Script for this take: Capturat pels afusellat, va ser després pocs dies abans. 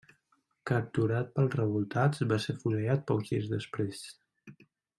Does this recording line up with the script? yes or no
no